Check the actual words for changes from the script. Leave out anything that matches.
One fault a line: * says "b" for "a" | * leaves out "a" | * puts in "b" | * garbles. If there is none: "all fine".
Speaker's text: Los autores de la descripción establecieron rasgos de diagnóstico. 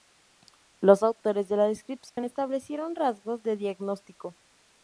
all fine